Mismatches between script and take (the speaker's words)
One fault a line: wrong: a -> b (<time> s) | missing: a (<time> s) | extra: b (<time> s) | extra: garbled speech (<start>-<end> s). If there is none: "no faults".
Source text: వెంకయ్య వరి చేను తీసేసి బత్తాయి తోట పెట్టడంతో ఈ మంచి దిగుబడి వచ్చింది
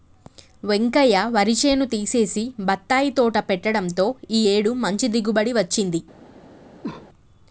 extra: ఏడు (4.5 s)